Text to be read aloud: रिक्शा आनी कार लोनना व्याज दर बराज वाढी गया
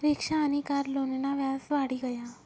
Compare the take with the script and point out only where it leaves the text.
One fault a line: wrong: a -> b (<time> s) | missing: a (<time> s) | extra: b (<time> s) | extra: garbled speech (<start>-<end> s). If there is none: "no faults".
missing: दर बराज (1.6 s)